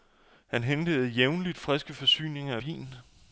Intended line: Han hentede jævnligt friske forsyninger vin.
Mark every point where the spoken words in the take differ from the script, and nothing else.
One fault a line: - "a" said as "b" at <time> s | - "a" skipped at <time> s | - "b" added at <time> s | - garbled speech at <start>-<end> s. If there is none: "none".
none